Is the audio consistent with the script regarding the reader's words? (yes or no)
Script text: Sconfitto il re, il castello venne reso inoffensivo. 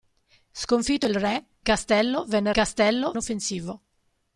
no